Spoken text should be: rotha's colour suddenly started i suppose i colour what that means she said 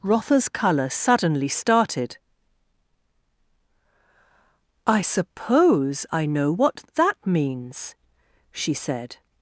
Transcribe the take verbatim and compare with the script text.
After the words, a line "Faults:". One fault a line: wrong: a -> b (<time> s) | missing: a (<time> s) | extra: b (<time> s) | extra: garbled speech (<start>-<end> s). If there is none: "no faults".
rotha's colour suddenly started i suppose i know what that means she said
Faults:
wrong: colour -> know (6.3 s)